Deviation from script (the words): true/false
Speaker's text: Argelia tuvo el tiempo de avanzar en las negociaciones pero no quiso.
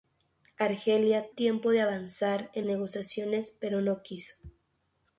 true